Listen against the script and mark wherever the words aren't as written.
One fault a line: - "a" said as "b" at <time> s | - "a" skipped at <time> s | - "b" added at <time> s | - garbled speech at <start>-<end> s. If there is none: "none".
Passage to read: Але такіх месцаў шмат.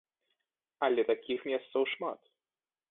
none